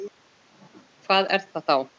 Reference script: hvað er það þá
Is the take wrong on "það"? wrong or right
right